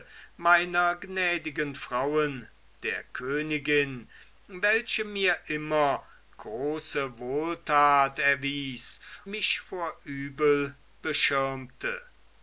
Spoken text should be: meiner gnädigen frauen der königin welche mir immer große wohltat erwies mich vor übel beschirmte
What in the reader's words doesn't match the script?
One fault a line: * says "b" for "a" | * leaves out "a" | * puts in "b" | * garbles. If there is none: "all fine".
all fine